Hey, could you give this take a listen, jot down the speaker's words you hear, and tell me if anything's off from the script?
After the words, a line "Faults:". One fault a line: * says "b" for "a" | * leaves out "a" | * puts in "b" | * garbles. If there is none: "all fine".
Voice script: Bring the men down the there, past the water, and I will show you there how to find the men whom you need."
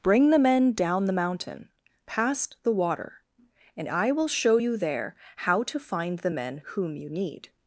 Bring the men down the mountain, past the water, and I will show you there how to find the men whom you need."
Faults:
* says "mountain" for "there"